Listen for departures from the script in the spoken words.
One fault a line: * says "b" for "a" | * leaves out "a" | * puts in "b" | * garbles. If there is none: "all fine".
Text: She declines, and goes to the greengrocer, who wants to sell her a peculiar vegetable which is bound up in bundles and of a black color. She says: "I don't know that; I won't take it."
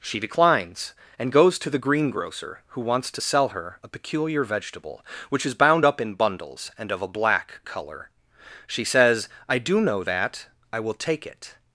* says "do" for "don't"
* says "will" for "won't"